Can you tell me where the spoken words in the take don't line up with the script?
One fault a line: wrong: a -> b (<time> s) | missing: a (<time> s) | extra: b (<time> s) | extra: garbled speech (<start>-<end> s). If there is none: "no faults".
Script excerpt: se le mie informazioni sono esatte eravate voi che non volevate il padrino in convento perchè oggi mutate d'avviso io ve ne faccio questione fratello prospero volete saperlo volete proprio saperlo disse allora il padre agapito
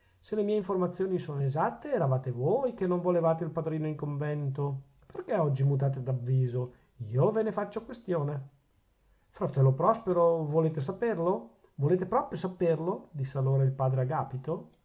no faults